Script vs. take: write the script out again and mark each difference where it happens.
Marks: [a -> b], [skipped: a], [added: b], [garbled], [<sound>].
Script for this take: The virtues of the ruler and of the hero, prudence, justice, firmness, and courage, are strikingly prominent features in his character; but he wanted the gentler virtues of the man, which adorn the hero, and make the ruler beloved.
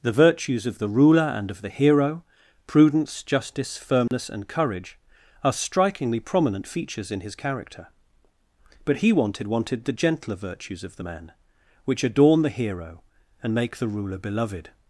The virtues of the ruler and of the hero, prudence, justice, firmness, [dropout] and courage, are strikingly prominent features in his character; but he wanted [added: wanted] the gentler virtues of the man, which adorn the hero, and make the ruler beloved.